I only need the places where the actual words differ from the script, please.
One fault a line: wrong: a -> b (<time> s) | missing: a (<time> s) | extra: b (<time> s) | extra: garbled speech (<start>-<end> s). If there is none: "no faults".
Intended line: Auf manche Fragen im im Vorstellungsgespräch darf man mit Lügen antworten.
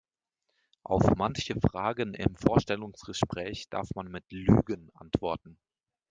missing: im (2.4 s)